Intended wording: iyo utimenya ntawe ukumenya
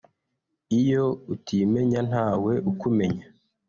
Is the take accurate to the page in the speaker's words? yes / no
yes